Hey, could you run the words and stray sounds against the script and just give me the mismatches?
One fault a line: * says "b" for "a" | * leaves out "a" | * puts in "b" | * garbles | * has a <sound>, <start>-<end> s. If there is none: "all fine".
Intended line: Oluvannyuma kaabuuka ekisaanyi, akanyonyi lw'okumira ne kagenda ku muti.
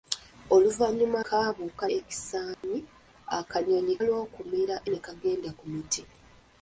* has a dropout, 2.5-2.6 s